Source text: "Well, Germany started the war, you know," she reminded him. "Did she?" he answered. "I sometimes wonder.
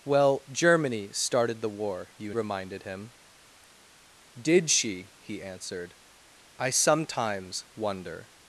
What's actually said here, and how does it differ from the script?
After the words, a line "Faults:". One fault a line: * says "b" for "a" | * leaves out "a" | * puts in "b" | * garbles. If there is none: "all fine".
"Well, Germany started the war, you reminded him. "Did she?" he answered. "I sometimes wonder.
Faults:
* leaves out "know she"